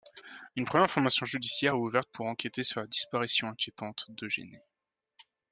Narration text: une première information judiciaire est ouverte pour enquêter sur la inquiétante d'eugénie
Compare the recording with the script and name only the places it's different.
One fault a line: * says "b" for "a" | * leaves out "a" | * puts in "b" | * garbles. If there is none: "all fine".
* puts in "disparition"